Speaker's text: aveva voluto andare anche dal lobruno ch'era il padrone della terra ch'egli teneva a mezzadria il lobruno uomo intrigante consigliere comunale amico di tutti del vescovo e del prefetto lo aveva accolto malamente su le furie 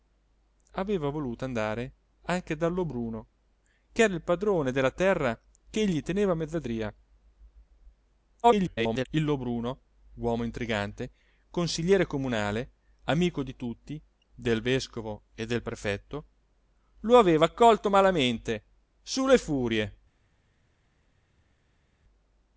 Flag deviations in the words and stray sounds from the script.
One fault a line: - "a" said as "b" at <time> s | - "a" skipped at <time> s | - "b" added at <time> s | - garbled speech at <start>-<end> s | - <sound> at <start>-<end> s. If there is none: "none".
- garbled speech at 8.4-9.1 s